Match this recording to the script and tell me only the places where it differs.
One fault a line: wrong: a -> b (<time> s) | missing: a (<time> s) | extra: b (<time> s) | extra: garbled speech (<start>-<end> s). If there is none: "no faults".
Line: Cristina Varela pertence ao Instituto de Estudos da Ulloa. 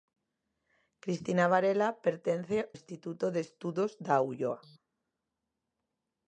missing: ao (2.6 s)